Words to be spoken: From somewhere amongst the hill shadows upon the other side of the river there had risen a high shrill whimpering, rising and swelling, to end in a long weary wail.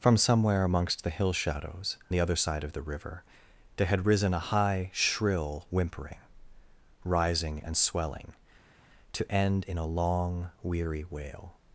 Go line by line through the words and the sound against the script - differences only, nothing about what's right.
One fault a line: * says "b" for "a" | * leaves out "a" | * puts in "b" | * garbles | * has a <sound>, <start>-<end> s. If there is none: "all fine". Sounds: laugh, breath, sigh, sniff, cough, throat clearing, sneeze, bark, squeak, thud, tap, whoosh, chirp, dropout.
* leaves out "upon"